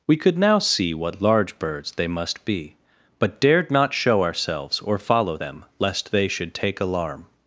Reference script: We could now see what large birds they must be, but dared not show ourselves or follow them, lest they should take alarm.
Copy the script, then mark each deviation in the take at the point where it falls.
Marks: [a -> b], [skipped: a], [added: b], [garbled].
We could now see what large birds they must be, but dared not show ourselves or follow them, lest they should take alarm.